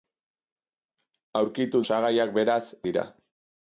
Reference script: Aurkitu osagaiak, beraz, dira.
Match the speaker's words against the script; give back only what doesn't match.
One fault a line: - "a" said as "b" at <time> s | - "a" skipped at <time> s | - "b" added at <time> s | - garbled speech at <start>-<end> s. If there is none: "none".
none